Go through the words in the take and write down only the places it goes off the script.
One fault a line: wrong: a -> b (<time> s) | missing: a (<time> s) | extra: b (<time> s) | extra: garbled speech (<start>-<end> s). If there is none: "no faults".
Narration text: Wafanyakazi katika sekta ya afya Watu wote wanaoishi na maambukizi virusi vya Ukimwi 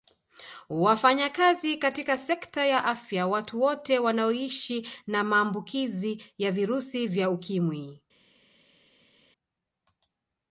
extra: ya (6.4 s)